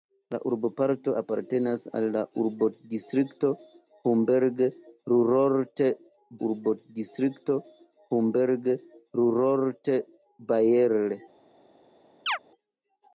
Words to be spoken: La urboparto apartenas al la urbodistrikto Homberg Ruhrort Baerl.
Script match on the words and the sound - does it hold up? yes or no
no